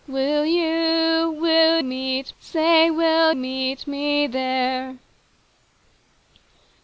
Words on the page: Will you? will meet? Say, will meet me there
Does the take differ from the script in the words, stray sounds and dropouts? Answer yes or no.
no